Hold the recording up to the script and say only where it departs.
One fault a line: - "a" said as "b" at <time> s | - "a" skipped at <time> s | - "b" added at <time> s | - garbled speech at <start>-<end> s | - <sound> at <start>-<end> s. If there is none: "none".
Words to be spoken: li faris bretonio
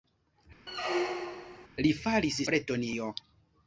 - squeak at 0.7-1.7 s